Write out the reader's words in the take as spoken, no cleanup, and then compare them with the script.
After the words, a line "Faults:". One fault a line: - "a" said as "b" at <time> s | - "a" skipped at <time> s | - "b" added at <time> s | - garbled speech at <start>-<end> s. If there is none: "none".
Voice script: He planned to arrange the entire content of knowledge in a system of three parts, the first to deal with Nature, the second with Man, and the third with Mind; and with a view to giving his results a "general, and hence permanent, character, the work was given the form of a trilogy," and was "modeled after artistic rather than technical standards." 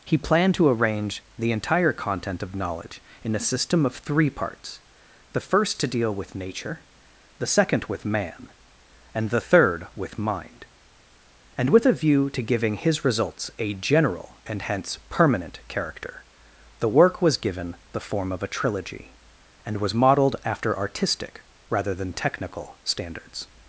He planned to arrange the entire content of knowledge in a system of three parts, the first to deal with Nature, the second with Man, and the third with Mind; and with a view to giving his results a "general, and hence permanent, character, the work was given the form of a trilogy," and was "modeled after artistic rather than technical standards."
Faults:
none